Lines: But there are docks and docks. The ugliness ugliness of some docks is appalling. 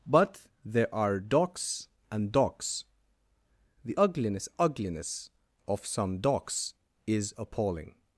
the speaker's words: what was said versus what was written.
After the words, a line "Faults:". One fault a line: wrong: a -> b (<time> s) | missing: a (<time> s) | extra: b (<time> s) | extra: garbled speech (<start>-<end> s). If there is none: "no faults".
But there are docks and docks. The ugliness ugliness of some docks is appalling.
Faults:
no faults